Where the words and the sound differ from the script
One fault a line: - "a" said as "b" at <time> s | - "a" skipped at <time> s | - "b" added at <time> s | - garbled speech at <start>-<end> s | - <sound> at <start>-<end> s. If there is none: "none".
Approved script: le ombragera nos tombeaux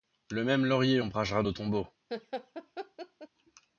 - "même laurier" added at 0.4 s
- laugh at 2.1-3.3 s